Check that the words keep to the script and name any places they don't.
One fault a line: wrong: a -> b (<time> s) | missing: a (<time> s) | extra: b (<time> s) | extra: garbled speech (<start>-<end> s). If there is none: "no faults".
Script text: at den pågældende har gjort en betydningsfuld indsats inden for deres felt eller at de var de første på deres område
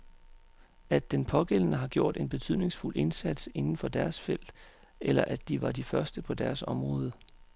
no faults